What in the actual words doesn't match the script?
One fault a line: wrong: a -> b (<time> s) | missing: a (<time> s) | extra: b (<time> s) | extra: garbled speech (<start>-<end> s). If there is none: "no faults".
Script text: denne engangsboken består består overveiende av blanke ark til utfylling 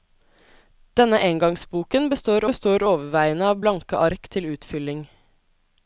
no faults